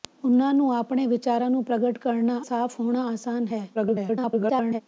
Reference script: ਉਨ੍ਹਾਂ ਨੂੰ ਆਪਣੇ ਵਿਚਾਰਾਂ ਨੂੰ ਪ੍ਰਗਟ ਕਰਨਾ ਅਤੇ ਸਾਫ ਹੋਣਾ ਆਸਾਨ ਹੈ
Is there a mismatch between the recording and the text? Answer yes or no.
yes